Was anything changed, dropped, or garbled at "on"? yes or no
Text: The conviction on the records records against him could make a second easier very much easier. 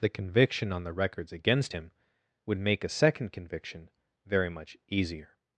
no